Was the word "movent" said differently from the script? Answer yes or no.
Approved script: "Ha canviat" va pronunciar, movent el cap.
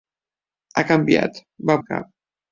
yes